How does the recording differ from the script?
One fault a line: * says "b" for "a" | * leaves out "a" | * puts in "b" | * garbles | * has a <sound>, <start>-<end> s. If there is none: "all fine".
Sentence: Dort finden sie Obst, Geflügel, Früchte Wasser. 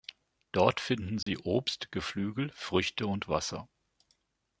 * has a dropout, 1.2-1.3 s
* puts in "und"